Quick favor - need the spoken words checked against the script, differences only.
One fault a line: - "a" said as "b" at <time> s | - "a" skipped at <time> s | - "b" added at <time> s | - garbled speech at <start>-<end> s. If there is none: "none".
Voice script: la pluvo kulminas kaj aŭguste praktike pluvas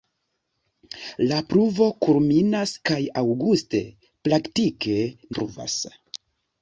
none